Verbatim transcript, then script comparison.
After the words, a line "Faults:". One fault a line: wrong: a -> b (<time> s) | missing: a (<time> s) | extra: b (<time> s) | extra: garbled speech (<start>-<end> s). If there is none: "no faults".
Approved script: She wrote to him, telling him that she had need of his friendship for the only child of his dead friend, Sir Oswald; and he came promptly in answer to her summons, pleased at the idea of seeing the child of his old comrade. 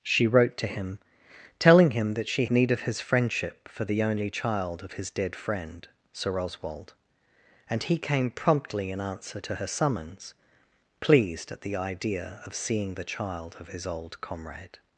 She wrote to him, telling him that she need of his friendship for the only child of his dead friend, Sir Oswald; and he came promptly in answer to her summons, pleased at the idea of seeing the child of his old comrade.
Faults:
missing: had (2.5 s)